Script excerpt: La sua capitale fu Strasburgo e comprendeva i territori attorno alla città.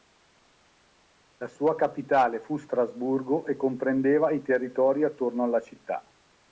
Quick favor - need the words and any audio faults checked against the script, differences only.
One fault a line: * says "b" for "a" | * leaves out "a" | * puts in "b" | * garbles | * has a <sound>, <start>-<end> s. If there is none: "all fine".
all fine